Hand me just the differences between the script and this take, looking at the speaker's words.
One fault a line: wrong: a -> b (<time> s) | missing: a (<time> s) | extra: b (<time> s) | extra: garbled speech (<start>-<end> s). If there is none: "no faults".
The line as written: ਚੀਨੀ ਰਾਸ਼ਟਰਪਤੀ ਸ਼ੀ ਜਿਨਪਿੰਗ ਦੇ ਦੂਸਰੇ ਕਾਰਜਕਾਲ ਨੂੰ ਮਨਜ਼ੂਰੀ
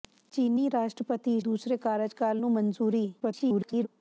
missing: ਸ਼ੀ ਜਿਨਪਿੰਗ ਦੇ (1.4 s)
extra: garbled speech (3.2-3.9 s)